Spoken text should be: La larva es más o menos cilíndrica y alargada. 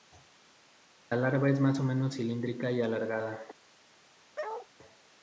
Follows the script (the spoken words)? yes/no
yes